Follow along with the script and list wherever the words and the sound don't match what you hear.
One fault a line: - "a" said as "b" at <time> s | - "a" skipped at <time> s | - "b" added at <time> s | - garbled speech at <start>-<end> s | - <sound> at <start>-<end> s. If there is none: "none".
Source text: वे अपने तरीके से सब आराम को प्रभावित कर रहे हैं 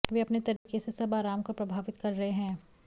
- dropout at 0.6-0.7 s